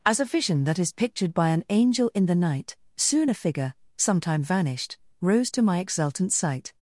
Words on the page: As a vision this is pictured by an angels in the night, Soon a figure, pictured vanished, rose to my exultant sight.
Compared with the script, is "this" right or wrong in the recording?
wrong